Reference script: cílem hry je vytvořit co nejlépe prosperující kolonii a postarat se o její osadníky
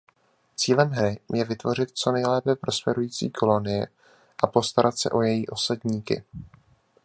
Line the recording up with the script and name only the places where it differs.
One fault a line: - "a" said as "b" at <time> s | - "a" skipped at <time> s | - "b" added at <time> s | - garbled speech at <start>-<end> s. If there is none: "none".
none